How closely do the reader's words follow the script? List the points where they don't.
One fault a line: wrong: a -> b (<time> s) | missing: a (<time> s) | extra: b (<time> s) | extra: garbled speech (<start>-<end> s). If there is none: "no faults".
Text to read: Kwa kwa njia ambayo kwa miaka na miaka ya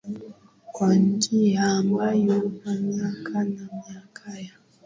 missing: kwa (0.9 s)